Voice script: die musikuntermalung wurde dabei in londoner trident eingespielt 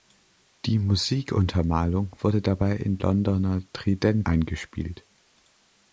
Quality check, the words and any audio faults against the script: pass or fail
pass